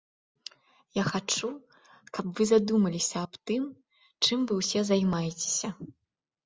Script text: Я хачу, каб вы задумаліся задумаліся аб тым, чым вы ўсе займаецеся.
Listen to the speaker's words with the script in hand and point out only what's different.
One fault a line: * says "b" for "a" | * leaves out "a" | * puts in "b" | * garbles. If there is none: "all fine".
* leaves out "задумаліся"